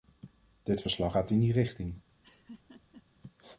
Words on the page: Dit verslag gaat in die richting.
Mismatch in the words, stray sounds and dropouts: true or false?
true